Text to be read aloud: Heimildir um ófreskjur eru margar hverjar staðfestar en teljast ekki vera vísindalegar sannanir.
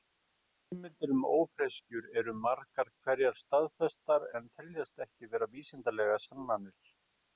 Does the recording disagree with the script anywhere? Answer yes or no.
no